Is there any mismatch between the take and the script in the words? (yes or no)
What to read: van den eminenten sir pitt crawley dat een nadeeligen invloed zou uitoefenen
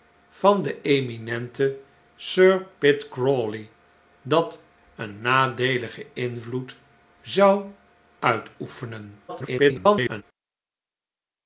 yes